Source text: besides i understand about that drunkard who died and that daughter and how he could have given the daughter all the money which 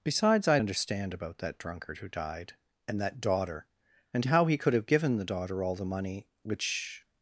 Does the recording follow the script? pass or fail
pass